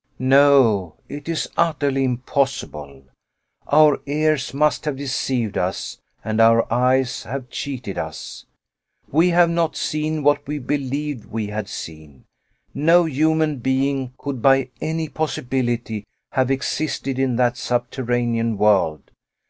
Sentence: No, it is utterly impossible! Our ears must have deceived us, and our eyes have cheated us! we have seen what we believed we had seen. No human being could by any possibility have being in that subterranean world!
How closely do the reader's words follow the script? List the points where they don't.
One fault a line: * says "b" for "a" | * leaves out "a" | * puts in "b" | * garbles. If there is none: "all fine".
* puts in "not"
* says "existed" for "being"